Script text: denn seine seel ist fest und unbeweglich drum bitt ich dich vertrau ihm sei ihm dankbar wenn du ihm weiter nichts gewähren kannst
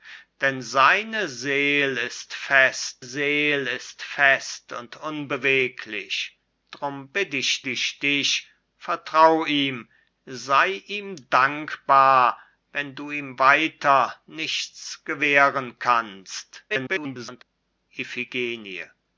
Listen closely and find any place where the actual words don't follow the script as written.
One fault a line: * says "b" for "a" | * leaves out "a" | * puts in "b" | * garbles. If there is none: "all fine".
* puts in "seel ist fest"
* puts in "ich"
* garbles